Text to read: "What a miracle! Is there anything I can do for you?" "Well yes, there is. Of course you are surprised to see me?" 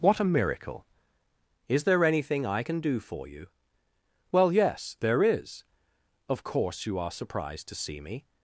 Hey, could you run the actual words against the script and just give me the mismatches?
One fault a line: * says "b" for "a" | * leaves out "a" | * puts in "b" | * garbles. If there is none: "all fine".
all fine